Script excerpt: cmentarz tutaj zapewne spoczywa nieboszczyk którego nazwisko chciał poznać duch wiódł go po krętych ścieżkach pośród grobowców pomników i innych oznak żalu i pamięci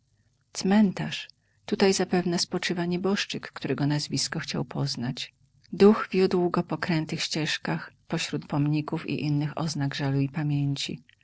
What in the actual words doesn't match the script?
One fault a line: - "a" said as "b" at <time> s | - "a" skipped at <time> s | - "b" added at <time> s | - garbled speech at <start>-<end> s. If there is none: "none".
- "grobowców" skipped at 8.4 s